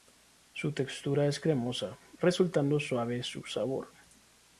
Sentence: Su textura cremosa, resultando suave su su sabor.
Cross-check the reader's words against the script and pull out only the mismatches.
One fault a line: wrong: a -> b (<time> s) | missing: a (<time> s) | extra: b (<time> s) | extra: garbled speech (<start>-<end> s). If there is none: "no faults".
extra: es (1.3 s)
missing: su (3.4 s)